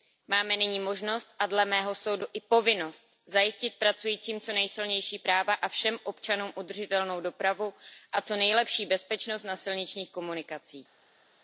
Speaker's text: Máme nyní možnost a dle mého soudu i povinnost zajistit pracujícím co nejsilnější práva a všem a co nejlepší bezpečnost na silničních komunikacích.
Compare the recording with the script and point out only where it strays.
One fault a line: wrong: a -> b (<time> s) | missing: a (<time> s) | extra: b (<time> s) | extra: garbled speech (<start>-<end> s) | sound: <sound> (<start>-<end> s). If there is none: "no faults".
extra: občanům udržitelnou dopravu (6.0 s)